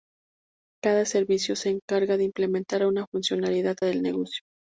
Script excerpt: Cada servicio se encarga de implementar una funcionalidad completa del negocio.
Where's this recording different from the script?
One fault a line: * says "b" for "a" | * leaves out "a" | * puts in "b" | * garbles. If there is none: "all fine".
* leaves out "completa"